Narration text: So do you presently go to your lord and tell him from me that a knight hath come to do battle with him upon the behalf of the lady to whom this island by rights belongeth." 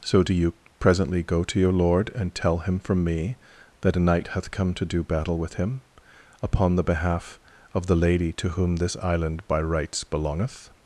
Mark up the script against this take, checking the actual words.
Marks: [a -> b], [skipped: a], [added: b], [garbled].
So do you presently go to your lord and tell him from me that a knight hath come to do battle with him upon the behalf of the lady to whom this island by rights belongeth."